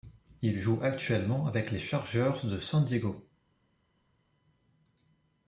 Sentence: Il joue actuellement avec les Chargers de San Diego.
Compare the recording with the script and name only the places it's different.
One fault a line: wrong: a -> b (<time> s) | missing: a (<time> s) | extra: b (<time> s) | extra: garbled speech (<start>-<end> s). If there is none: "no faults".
no faults